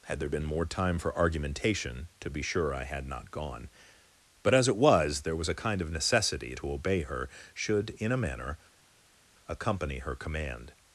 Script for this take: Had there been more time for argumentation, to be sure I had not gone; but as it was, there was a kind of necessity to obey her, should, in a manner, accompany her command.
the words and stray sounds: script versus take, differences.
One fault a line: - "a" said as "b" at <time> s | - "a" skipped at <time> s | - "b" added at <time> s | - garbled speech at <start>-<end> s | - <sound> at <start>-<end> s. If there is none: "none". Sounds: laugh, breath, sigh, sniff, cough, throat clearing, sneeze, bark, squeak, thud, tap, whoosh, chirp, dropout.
none